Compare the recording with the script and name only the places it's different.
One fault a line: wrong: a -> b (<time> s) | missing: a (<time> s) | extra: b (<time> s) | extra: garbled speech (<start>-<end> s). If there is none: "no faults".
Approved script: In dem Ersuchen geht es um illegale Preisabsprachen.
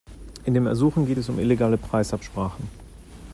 no faults